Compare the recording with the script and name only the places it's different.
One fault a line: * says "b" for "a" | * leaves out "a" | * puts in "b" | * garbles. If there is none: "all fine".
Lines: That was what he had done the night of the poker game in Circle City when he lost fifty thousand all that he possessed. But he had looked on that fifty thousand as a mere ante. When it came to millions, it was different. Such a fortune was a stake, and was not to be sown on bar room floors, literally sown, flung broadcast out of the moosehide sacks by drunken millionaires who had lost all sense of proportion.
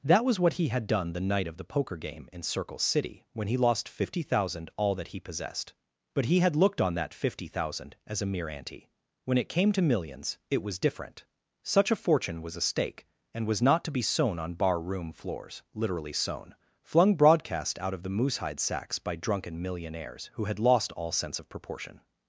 all fine